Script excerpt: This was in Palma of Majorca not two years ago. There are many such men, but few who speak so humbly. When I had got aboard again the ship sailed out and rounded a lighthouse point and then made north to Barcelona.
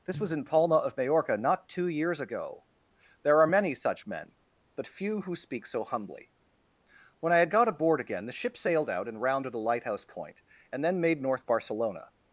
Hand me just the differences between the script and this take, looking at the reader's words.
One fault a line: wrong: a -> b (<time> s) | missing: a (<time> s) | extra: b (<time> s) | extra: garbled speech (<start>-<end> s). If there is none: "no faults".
missing: to (11.4 s)